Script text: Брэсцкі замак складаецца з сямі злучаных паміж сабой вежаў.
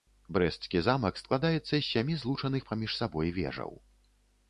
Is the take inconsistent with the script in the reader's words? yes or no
no